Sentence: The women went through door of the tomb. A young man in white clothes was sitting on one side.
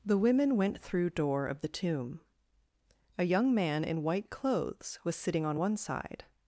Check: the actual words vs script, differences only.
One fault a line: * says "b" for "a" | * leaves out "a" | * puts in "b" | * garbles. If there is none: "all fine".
all fine